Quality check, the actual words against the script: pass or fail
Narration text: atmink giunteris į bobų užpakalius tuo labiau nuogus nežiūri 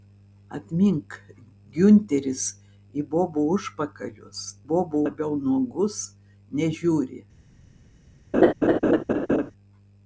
fail